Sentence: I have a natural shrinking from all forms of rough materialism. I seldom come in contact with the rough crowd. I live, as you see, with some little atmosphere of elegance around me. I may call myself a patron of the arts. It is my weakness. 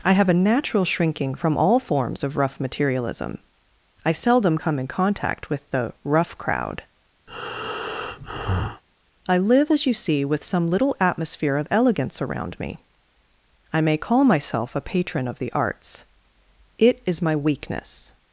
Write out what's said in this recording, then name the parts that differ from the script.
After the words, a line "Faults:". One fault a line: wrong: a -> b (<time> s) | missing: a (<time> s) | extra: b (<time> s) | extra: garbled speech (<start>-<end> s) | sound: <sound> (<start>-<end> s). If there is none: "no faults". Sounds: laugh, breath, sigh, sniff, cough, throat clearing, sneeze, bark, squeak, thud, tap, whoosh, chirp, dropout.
I have a natural shrinking from all forms of rough materialism. I seldom come in contact with the rough crowd. I live, as you see, with some little atmosphere of elegance around me. I may call myself a patron of the arts. It is my weakness.
Faults:
sound: breath (7.3-8.8 s)